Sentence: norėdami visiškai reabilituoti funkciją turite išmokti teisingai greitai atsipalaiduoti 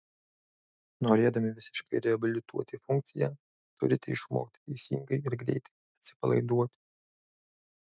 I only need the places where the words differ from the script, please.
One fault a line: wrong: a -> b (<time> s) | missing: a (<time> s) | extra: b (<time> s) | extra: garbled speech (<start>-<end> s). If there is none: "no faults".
extra: ir (5.3 s)